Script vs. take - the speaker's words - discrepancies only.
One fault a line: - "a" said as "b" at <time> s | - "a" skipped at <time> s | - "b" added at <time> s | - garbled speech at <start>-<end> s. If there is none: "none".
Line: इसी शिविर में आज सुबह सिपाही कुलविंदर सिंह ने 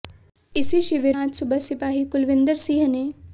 - "में" skipped at 1.2 s